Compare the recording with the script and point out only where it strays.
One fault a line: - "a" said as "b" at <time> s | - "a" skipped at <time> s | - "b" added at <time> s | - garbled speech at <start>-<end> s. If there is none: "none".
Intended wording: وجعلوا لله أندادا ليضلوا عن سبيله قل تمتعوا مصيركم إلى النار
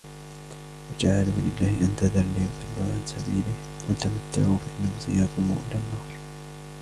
- "فإن" added at 4.5 s